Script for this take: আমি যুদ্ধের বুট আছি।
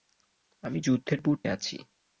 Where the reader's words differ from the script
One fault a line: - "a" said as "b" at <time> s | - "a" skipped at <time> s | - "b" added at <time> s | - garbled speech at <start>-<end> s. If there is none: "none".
none